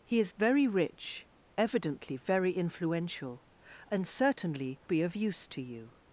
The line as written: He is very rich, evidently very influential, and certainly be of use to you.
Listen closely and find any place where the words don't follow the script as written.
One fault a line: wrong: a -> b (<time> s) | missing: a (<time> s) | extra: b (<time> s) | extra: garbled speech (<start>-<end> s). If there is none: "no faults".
no faults